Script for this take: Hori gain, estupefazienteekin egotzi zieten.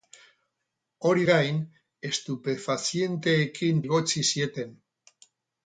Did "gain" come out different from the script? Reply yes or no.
no